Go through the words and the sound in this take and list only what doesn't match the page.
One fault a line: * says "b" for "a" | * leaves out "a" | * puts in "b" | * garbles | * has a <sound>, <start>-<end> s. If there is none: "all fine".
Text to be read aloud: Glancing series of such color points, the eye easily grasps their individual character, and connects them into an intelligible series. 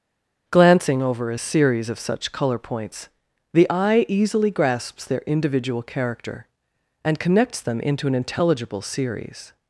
* puts in "over a"